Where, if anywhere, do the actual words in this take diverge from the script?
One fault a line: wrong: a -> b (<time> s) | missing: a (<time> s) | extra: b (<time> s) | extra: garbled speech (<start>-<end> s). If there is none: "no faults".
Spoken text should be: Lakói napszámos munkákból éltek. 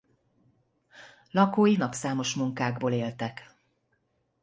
no faults